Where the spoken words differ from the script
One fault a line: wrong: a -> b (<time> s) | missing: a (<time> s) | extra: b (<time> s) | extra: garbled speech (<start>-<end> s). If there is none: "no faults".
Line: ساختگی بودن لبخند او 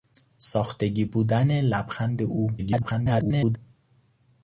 extra: garbled speech (2.6-3.6 s)